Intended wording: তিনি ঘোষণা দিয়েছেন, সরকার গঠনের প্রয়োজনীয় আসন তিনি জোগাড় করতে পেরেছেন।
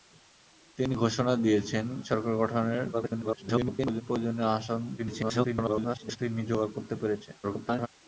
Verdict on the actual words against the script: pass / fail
fail